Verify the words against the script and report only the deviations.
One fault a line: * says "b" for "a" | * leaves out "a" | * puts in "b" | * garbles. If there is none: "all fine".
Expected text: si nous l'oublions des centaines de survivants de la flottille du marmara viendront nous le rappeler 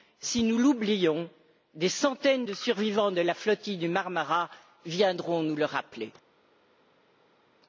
all fine